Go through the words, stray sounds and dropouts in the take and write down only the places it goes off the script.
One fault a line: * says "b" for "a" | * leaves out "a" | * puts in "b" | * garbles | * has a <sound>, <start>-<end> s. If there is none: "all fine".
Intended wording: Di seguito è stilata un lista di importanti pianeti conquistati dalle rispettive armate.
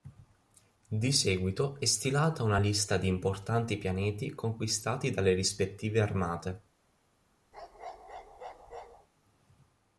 * says "una" for "un"
* has a bark, 7.5-9.1 s